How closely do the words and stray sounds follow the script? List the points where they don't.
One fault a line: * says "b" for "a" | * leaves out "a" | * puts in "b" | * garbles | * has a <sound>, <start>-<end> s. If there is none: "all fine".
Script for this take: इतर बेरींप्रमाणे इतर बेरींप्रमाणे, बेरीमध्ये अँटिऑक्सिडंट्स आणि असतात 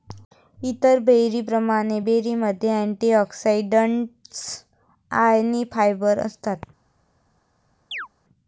* leaves out "इतर बेरींप्रमाणे"
* puts in "फायबर"
* has a chirp, 7.9-8.1 s